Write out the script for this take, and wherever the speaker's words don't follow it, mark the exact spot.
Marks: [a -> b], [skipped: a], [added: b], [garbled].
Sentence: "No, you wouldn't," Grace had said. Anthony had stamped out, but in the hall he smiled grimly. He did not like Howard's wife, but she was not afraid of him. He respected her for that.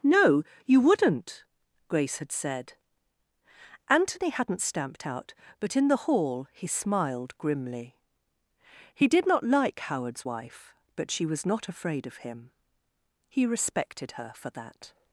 "No, you wouldn't," Grace had said. Anthony [had -> hadn't] stamped out, but in the hall he smiled grimly. He did not like Howard's wife, but she was not afraid of him. He respected her for that.